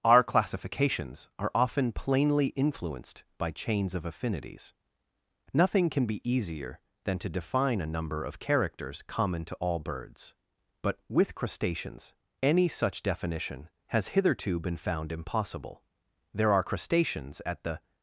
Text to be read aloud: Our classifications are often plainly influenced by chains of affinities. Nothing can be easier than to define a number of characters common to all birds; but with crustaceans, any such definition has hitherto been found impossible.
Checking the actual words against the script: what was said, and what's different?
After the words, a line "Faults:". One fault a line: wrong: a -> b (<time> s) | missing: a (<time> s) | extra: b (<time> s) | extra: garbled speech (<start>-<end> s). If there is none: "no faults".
Our classifications are often plainly influenced by chains of affinities. Nothing can be easier than to define a number of characters common to all birds; but with crustaceans, any such definition has hitherto been found impossible. There are crustaceans at the
Faults:
extra: There are crustaceans at the (16.3 s)